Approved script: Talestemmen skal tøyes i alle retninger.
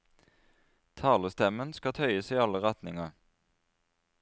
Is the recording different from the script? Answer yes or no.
no